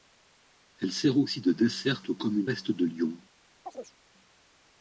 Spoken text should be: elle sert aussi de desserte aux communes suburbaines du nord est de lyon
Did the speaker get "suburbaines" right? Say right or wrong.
wrong